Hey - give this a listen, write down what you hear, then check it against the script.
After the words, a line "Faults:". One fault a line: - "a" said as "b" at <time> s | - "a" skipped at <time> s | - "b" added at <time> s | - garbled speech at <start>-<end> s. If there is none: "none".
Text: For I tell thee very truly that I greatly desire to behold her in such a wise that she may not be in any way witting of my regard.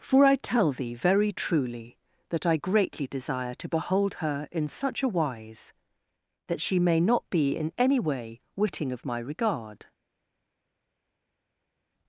For I tell thee very truly that I greatly desire to behold her in such a wise that she may not be in any way witting of my regard.
Faults:
none